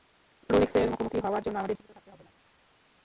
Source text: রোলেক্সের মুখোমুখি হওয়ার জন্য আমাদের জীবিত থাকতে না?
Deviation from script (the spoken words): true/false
true